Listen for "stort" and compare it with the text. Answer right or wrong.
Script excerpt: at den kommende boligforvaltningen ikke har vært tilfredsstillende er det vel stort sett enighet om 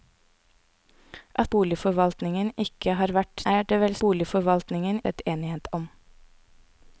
wrong